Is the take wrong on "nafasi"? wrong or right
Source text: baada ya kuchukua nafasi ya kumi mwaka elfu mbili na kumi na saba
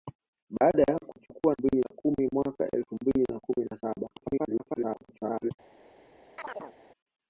wrong